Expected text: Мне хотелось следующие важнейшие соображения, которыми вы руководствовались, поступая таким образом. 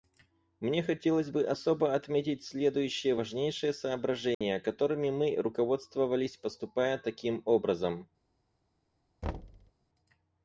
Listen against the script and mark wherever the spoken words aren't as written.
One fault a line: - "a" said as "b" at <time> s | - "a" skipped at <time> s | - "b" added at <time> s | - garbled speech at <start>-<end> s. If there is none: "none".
- "бы особо отметить" added at 1.3 s
- "вы" said as "мы" at 5.1 s